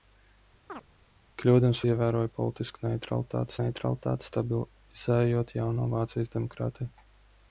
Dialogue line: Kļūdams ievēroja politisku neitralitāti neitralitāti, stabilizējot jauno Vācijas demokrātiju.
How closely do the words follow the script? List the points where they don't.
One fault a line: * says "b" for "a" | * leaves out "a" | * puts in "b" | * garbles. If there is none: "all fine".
all fine